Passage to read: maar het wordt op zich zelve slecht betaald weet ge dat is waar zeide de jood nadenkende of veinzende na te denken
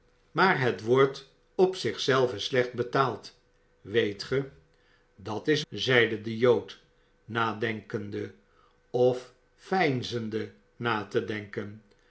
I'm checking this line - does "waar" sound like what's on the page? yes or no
no